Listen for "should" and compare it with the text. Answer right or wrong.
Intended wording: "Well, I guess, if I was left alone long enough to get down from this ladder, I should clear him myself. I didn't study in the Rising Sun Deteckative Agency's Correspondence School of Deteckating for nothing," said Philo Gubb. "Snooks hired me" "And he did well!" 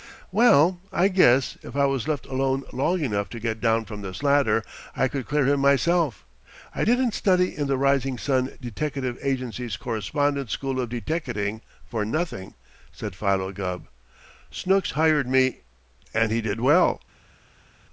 wrong